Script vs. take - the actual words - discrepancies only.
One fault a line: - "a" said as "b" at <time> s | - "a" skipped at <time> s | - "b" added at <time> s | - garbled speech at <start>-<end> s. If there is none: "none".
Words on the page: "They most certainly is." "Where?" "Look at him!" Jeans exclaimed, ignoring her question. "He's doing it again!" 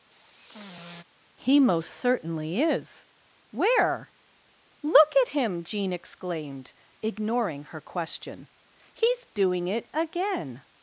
- "They" said as "He" at 1.4 s
- "Jeans" said as "Jean" at 5.6 s